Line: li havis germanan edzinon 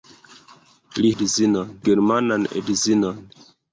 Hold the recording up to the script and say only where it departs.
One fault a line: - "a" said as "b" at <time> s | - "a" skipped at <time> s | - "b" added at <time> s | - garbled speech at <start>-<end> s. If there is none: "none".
- "havis" said as "edzinon" at 1.2 s